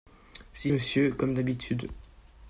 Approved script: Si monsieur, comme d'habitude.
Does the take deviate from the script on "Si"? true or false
false